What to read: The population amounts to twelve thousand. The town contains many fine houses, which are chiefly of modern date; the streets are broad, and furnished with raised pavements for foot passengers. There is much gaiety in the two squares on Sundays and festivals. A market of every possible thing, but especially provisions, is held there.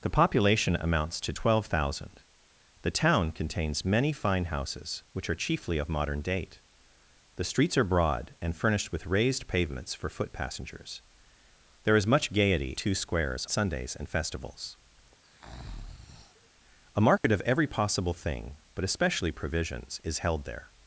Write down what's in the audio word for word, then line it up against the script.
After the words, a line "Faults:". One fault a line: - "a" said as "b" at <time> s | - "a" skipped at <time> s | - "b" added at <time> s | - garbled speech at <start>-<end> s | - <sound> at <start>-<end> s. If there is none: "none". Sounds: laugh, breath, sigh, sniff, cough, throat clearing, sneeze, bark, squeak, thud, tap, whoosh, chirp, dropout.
The population amounts to twelve thousand. The town contains many fine houses, which are chiefly of modern date; the streets are broad, and furnished with raised pavements for foot passengers. There is much gaiety two squares Sundays and festivals. A market of every possible thing, but especially provisions, is held there.
Faults:
- "in the" skipped at 12.8 s
- "on" skipped at 13.5 s
- breath at 15.2-16.5 s
- dropout at 17.2-17.2 s